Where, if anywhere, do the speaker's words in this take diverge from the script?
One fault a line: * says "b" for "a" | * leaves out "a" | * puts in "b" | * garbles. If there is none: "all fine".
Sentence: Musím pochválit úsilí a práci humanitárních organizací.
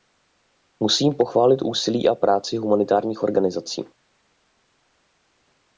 all fine